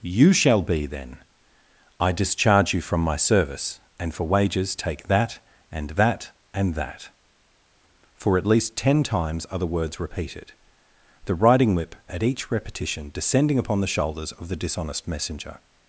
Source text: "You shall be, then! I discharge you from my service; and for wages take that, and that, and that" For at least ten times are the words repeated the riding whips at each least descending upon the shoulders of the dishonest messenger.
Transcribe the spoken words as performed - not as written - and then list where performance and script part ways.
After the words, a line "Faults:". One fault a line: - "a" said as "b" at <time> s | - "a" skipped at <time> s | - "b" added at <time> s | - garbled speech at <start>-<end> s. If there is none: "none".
"You shall be, then! I discharge you from my service; and for wages take that, and that, and that" For at least ten times are the words repeated the riding whip at each repetition descending upon the shoulders of the dishonest messenger.
Faults:
- "whips" said as "whip" at 11.8 s
- "least" said as "repetition" at 12.5 s